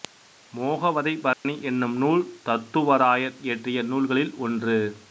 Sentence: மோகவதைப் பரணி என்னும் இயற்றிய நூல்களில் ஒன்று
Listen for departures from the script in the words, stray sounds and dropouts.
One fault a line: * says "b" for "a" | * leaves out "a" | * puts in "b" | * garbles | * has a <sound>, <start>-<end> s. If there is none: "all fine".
* has a dropout, 1.3-1.5 s
* puts in "நூல் தத்துவராயர்"